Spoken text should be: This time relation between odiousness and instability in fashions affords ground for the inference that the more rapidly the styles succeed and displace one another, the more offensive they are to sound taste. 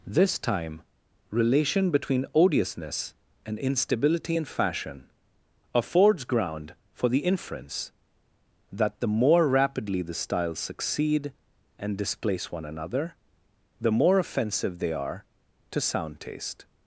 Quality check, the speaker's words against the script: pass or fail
fail